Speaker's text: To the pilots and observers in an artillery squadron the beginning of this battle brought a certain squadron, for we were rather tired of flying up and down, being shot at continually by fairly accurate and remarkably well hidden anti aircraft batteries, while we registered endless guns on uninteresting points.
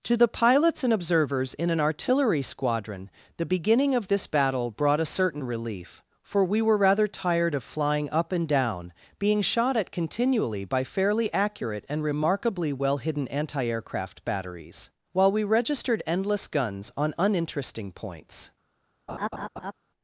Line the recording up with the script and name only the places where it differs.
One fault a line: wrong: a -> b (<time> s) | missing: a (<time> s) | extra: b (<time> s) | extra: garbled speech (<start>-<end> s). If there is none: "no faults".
wrong: squadron -> relief (5.4 s)